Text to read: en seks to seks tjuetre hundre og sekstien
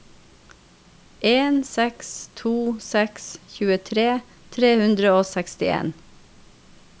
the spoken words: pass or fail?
fail